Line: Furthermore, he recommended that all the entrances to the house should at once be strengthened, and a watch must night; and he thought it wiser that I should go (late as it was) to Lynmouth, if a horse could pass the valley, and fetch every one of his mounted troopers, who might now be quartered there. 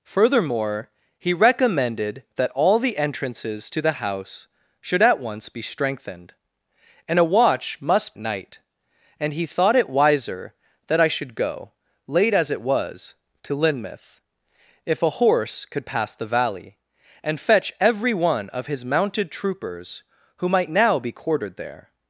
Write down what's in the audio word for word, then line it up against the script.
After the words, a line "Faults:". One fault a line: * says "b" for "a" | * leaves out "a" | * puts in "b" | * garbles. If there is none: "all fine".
Furthermore, he recommended that all the entrances to the house should at once be strengthened, and a watch must night; and he thought it wiser that I should go (late as it was) to Lynmouth, if a horse could pass the valley, and fetch every one of his mounted troopers, who might now be quartered there.
Faults:
all fine